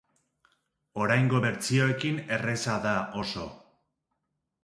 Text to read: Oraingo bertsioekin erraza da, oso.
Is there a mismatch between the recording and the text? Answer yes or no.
no